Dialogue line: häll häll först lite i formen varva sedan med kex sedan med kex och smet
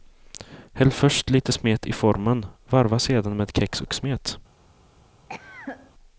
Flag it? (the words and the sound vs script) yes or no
yes